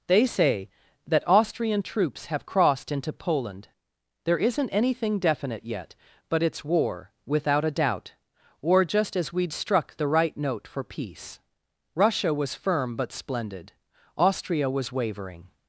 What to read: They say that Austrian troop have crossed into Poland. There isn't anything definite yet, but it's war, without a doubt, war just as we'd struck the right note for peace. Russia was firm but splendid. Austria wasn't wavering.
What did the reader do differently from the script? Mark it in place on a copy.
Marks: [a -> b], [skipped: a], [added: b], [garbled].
They say that Austrian [troop -> troops] have crossed into Poland. There isn't anything definite yet, but it's war, without a doubt, war just as we'd struck the right note for peace. Russia was firm but splendid. Austria [wasn't -> was] wavering.